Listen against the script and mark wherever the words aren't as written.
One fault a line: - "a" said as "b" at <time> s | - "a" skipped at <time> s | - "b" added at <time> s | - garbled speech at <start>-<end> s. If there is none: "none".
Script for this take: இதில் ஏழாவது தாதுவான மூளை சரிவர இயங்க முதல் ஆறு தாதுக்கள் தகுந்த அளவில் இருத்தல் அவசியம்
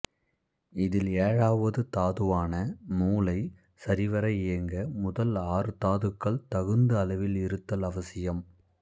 none